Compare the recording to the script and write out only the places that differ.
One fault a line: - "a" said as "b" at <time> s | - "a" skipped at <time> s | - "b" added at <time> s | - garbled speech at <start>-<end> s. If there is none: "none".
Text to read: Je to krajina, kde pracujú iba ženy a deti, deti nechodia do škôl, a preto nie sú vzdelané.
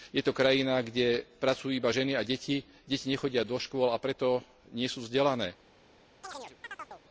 none